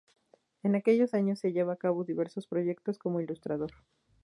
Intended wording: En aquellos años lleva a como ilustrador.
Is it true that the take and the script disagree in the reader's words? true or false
true